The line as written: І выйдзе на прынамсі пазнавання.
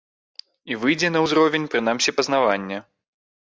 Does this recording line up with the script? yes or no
no